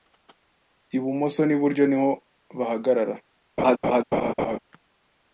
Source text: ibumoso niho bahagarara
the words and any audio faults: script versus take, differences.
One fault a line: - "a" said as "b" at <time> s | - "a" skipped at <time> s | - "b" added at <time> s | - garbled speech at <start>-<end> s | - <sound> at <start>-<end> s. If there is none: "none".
- "n'iburyo" added at 1.4 s
- laugh at 3.6-4.6 s